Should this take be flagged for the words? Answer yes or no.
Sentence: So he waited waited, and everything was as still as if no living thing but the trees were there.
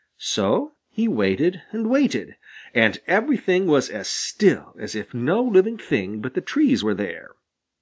yes